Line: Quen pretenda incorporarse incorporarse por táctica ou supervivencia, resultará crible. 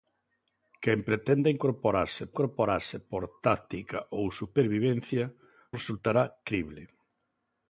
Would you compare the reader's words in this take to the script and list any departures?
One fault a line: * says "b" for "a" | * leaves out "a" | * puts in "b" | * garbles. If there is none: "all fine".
all fine